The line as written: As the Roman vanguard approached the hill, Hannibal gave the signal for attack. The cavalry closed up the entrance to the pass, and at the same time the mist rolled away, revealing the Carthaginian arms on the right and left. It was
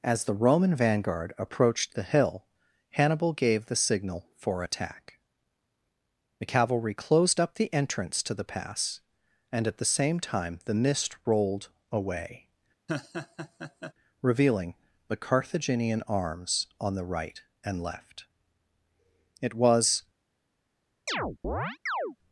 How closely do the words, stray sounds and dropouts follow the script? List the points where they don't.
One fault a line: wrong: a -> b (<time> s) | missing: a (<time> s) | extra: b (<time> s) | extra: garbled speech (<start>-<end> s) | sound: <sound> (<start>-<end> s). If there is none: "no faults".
sound: laugh (12.9-13.9 s)
sound: chirp (21.1-22.2 s)